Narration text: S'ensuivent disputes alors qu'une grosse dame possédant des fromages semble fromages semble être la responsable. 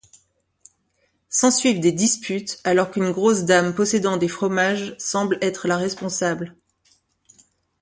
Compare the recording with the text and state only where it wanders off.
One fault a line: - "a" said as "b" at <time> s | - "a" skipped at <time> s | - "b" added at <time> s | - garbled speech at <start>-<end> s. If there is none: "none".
- "des" added at 1.8 s
- "fromages semble" skipped at 5.4 s